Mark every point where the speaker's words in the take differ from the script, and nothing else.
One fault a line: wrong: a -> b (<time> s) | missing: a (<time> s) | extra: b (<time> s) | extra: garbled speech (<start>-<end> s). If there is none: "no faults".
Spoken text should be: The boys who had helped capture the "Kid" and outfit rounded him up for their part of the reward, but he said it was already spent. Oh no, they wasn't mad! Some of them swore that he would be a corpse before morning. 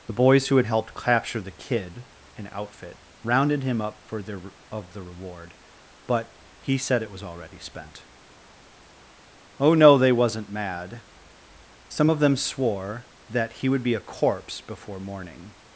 missing: part (4.4 s)